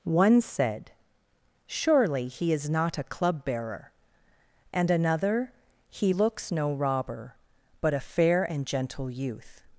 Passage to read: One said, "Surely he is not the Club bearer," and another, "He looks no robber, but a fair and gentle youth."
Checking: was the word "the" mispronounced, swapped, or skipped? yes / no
yes